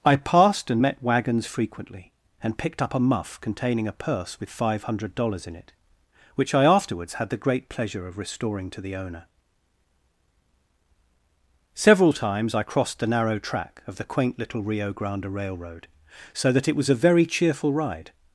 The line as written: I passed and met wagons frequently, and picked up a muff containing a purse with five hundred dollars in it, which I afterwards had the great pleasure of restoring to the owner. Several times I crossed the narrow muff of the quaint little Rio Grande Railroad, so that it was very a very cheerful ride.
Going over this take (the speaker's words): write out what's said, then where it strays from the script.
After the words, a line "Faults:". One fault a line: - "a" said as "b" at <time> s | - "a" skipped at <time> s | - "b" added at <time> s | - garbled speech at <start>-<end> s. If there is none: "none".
I passed and met wagons frequently, and picked up a muff containing a purse with five hundred dollars in it, which I afterwards had the great pleasure of restoring to the owner. Several times I crossed the narrow track of the quaint little Rio Grande Railroad, so that it was a very cheerful ride.
Faults:
- "muff" said as "track" at 13.4 s
- "very" skipped at 16.9 s